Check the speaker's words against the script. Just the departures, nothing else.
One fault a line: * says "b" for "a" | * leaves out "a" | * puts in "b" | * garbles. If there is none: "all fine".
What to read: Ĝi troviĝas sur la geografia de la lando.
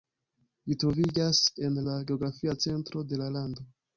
* says "en" for "sur"
* puts in "centro"